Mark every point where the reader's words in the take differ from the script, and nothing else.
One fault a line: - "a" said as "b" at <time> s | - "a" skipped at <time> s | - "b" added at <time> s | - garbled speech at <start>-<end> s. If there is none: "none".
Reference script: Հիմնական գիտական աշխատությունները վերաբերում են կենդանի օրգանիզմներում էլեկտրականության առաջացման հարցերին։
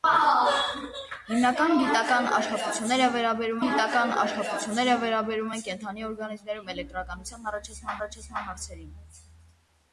- "գիտական աշխատությունները վերաբերում" added at 3.6 s
- "առաջացման" added at 8.0 s